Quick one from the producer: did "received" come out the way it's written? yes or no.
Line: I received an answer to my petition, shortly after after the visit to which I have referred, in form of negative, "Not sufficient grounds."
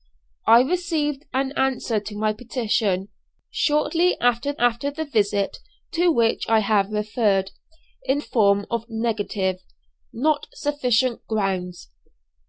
yes